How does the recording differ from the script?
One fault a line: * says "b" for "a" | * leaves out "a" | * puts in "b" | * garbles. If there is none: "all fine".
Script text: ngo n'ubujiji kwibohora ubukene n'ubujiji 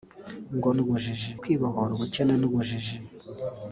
all fine